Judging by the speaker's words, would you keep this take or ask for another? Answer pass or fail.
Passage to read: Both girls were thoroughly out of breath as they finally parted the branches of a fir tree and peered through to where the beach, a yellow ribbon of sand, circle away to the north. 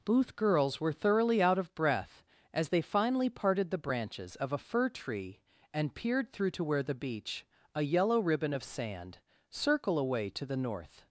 pass